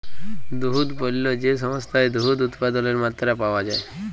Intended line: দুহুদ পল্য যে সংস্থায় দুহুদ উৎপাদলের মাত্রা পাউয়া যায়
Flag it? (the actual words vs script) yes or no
no